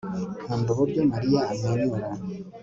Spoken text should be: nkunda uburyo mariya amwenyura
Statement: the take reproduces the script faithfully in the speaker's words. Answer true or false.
true